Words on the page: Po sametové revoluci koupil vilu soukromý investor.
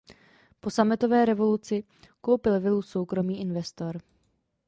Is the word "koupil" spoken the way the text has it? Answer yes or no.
yes